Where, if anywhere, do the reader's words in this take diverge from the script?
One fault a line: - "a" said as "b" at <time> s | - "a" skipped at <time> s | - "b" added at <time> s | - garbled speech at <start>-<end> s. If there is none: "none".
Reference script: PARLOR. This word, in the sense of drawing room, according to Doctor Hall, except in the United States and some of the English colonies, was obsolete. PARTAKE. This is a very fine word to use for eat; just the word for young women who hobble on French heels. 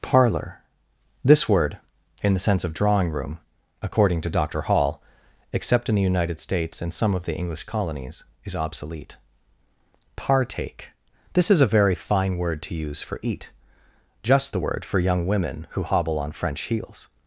- "was" said as "is" at 8.4 s